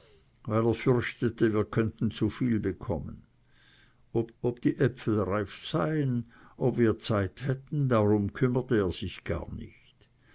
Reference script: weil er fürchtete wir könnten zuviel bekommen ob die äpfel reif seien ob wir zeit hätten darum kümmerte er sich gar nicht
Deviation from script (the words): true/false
true